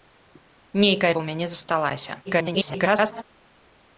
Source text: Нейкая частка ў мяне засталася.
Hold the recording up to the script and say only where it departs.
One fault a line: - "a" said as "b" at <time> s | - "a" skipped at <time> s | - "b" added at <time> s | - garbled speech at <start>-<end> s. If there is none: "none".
- "частка" skipped at 1.1 s
- garbled speech at 2.3-3.2 s